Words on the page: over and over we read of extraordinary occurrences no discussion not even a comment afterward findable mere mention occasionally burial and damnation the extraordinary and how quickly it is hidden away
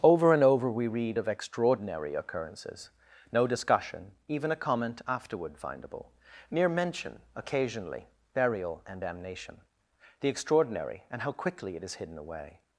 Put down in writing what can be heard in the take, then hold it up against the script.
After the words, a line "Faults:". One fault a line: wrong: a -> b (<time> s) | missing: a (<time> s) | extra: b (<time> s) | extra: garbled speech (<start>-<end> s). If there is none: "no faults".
over and over we read of extraordinary occurrences no discussion even a comment afterward findable mere mention occasionally burial and damnation the extraordinary and how quickly it is hidden away
Faults:
missing: not (4.1 s)